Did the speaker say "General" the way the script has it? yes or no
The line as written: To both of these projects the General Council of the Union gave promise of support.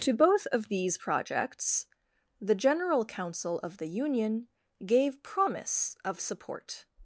yes